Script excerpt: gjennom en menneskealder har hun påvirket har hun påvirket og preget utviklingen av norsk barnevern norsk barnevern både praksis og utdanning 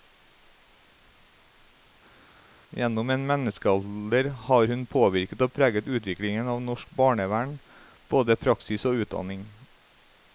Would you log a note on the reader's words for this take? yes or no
yes